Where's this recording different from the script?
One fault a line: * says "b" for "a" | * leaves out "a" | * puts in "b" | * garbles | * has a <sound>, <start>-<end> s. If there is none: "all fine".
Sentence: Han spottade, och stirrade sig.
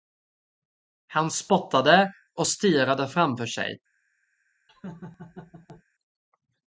* puts in "framför"
* has a laugh, 4.7-5.8 s